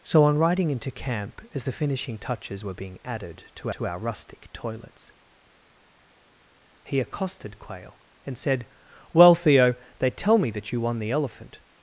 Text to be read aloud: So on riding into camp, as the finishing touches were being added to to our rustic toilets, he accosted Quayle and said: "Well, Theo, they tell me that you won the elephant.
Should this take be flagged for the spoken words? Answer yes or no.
no